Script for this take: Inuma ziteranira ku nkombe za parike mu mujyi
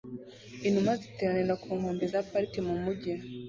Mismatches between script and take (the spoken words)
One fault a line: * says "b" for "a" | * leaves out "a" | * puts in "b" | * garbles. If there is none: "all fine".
all fine